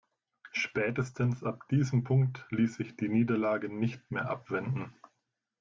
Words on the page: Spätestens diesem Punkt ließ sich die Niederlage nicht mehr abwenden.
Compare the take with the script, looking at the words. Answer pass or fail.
fail